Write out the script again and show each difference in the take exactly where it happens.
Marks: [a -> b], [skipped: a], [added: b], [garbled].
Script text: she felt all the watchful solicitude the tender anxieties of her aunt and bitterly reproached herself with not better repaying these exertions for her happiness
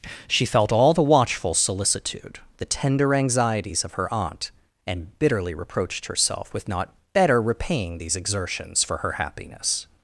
she felt all the watchful solicitude the tender anxieties of her aunt and bitterly reproached herself with not better repaying these exertions for her happiness